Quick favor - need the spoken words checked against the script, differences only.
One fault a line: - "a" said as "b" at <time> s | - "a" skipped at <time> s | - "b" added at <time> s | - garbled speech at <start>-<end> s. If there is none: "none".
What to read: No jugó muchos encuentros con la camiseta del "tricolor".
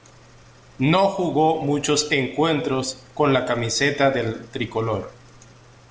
none